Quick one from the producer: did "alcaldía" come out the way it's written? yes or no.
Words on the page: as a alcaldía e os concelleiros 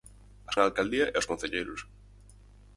yes